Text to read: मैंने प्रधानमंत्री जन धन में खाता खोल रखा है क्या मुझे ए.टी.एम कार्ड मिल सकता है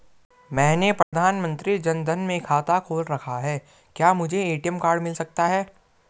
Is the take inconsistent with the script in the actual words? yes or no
no